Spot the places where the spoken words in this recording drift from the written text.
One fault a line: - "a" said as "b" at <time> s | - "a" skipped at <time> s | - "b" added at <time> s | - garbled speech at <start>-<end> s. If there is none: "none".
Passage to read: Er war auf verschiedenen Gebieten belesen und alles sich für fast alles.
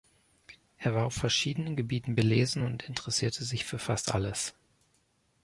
- "alles" said as "interessierte" at 2.8 s